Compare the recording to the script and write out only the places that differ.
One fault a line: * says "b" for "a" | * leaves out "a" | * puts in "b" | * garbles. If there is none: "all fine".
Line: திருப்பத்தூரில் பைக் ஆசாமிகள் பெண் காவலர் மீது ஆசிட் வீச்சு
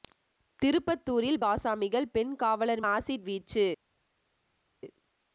* leaves out "பைக்"
* leaves out "மீது"